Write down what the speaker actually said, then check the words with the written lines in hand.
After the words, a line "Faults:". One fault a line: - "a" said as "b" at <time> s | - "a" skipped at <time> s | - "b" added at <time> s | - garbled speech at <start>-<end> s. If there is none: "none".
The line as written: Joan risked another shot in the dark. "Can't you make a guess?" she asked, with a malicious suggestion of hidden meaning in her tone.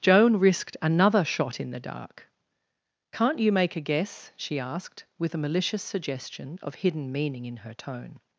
Joan risked another shot in the dark. "Can't you make a guess?" she asked, with a malicious suggestion of hidden meaning in her tone.
Faults:
none